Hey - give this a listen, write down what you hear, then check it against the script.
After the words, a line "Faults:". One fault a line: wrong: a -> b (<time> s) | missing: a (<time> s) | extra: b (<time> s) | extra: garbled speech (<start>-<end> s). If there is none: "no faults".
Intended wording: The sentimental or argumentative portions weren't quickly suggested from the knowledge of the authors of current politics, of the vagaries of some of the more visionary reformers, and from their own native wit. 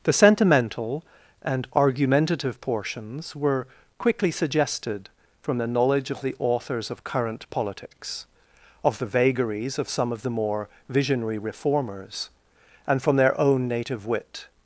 The sentimental and argumentative portions were quickly suggested from the knowledge of the authors of current politics, of the vagaries of some of the more visionary reformers, and from their own native wit.
Faults:
wrong: or -> and (1.4 s)
wrong: weren't -> were (3.4 s)